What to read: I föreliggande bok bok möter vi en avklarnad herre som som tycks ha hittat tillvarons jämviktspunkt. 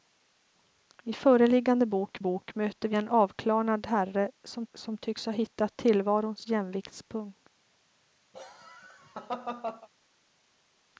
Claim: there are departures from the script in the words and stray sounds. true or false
true